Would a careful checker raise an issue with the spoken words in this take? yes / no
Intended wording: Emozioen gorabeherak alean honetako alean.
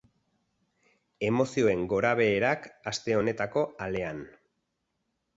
yes